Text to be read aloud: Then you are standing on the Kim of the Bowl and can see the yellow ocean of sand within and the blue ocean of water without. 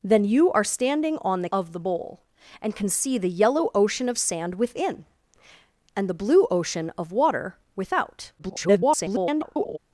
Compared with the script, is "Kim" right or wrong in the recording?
wrong